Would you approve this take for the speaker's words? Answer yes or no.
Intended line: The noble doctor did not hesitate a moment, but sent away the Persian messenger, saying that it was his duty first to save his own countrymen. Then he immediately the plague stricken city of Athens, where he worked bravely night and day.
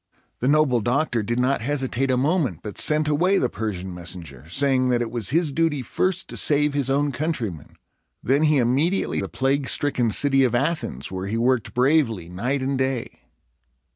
yes